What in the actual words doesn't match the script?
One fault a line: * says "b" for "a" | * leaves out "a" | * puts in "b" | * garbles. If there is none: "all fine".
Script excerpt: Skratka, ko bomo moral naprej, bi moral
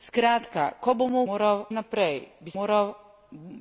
all fine